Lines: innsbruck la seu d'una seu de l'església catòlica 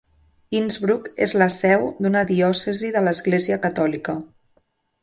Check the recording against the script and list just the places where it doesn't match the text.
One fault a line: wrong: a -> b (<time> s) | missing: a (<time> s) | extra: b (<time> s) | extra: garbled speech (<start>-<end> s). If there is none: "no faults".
extra: és (1.2 s)
wrong: seu -> diòcesi (2.3 s)